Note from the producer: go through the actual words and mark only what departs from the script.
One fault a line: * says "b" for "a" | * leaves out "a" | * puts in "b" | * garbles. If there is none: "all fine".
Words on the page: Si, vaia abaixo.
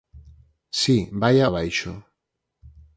all fine